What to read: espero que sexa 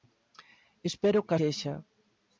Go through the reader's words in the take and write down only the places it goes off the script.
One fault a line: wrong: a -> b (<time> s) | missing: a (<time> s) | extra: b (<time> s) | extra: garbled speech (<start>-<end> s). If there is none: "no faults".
no faults